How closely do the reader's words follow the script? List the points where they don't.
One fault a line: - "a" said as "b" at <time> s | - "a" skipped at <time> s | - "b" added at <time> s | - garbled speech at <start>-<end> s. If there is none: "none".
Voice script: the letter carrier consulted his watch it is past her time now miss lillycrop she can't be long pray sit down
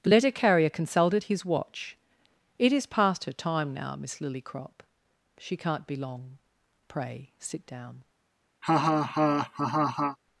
none